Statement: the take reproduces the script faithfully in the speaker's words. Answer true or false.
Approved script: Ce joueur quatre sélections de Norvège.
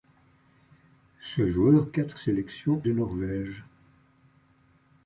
true